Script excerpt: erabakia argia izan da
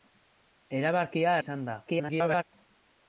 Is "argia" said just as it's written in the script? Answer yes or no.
no